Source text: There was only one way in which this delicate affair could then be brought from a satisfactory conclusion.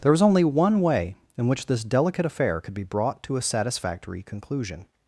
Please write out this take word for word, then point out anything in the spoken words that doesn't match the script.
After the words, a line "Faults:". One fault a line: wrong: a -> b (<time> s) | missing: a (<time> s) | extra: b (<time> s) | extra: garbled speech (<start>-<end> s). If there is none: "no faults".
There was only one way in which this delicate affair could be brought to a satisfactory conclusion.
Faults:
missing: then (2.7 s)
wrong: from -> to (3.2 s)